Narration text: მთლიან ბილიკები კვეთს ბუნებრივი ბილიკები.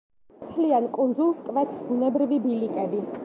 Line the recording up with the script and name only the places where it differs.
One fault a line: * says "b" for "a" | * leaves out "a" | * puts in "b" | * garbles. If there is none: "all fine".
* says "კუნძულს" for "ბილიკები"